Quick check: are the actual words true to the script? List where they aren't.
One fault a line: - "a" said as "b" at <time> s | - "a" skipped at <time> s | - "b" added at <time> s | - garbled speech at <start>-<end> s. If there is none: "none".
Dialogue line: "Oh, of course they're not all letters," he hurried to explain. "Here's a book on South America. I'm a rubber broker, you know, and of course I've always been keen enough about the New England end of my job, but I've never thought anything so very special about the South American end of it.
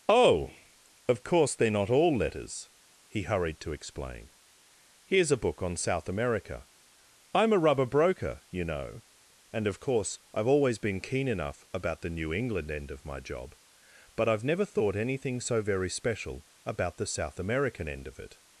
none